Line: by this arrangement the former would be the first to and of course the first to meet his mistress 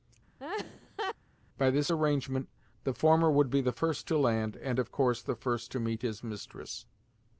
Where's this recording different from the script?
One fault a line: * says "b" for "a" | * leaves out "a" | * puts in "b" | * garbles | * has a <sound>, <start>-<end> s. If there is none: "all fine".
* has a laugh, 0.4-1.2 s
* puts in "land"